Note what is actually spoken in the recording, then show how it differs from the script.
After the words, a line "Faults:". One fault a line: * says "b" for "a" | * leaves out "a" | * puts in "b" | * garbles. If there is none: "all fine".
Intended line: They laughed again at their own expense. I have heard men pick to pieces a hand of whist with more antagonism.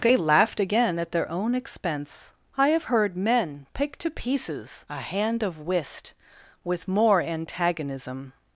They laughed again at their own expense. I have heard men pick to pieces a hand of whist with more antagonism.
Faults:
all fine